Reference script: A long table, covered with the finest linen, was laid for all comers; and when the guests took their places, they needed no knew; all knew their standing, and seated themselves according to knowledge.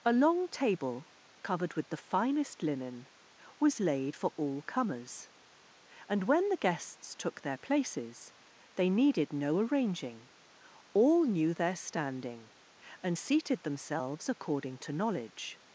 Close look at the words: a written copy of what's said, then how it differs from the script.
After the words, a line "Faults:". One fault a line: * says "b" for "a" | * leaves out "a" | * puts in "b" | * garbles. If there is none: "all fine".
A long table, covered with the finest linen, was laid for all comers; and when the guests took their places, they needed no arranging; all knew their standing, and seated themselves according to knowledge.
Faults:
* says "arranging" for "knew"